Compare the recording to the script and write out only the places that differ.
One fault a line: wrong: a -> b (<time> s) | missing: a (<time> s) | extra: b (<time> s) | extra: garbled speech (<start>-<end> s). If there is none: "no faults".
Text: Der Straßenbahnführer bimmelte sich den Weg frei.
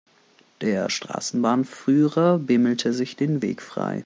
no faults